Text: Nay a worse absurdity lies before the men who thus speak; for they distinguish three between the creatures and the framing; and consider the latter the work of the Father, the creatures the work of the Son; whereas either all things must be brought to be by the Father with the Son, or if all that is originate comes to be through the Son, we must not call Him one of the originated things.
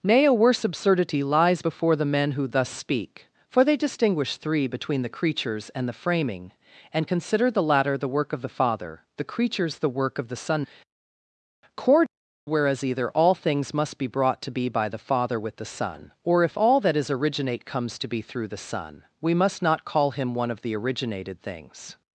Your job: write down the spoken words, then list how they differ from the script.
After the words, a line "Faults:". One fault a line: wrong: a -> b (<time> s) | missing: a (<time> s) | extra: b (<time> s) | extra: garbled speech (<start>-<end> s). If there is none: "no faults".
Nay a worse absurdity lies before the men who thus speak; for they distinguish three between the creatures and the framing; and consider the latter the work of the Father, the creatures the work of the Son; cord whereas either all things must be brought to be by the Father with the Son, or if all that is originate comes to be through the Son, we must not call Him one of the originated things.
Faults:
extra: cord (11.8 s)